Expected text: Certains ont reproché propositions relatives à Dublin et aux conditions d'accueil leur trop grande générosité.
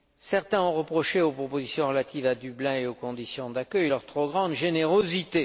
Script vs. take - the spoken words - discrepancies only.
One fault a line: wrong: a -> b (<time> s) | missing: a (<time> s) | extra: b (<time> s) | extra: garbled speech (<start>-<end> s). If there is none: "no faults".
extra: aux (1.2 s)